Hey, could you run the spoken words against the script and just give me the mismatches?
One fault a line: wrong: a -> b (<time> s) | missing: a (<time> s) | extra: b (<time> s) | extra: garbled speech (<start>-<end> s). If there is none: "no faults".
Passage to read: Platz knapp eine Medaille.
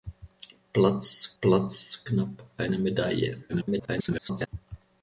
extra: platz (1.4 s)
extra: garbled speech (3.5-4.5 s)